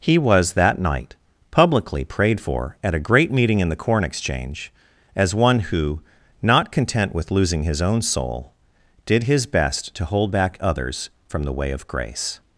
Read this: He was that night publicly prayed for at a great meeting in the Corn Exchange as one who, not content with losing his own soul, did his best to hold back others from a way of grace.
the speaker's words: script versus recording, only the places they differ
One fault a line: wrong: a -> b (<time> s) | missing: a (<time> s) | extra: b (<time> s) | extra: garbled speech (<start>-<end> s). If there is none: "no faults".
wrong: a -> the (11.4 s)